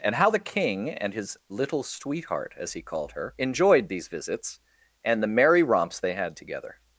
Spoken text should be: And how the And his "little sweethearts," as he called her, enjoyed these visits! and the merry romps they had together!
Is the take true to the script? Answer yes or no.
no